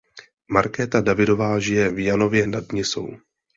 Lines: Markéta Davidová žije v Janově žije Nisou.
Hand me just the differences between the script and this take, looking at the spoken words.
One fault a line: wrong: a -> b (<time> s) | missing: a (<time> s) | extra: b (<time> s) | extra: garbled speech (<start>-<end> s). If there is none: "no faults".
wrong: žije -> nad (2.4 s)